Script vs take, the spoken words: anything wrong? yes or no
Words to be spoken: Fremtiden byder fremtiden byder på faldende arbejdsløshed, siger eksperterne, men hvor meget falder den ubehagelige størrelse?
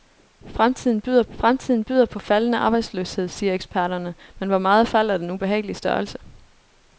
no